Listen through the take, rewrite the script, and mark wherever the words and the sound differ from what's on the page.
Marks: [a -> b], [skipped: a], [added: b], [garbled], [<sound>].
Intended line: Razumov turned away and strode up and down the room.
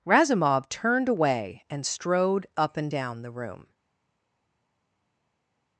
Razumov turned away and strode up and down the room.